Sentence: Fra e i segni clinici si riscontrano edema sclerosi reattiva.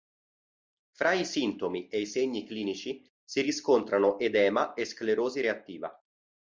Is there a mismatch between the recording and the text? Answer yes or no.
yes